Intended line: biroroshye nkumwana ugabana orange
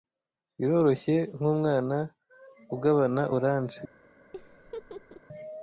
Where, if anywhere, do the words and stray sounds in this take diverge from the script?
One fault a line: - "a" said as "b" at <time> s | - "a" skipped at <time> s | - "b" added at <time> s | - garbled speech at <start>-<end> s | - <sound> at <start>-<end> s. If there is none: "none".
- laugh at 4.3-5.2 s